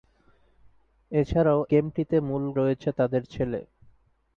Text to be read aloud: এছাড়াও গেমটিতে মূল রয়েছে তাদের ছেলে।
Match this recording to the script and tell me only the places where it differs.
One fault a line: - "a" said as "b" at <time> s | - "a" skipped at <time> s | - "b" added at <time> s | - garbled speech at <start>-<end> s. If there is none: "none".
none